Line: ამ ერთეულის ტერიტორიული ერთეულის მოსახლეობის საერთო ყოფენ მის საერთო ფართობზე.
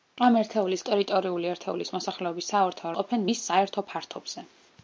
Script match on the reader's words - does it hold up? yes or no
yes